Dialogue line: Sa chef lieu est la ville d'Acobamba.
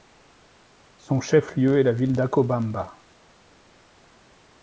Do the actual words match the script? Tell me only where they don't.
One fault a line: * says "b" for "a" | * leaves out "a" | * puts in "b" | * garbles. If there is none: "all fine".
* says "Son" for "Sa"